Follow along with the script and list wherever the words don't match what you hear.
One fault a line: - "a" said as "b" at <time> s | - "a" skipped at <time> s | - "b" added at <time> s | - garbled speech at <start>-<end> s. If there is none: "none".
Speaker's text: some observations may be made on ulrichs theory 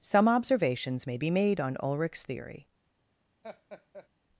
none